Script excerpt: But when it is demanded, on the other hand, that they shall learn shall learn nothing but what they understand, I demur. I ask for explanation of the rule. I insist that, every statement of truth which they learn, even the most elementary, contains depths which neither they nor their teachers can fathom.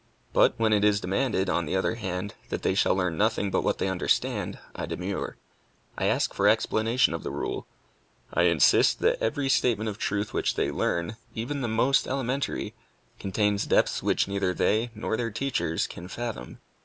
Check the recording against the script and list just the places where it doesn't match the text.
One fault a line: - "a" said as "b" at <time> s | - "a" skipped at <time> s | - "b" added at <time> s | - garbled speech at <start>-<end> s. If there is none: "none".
- "shall learn" skipped at 3.2 s